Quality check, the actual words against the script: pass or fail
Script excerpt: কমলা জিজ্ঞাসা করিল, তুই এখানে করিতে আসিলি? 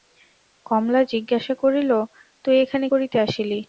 pass